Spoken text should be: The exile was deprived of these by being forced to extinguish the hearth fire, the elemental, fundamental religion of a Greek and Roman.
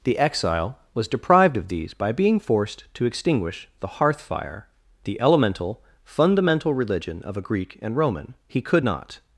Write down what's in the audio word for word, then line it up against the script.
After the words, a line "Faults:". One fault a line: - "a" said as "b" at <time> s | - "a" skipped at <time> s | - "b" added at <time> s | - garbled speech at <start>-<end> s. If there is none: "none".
The exile was deprived of these by being forced to extinguish the hearth fire, the elemental, fundamental religion of a Greek and Roman. "He could not
Faults:
- "He could not" added at 8.5 s